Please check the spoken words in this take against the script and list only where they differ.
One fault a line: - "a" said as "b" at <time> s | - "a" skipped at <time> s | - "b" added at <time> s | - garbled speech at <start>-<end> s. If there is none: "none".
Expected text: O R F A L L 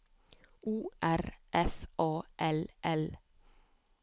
none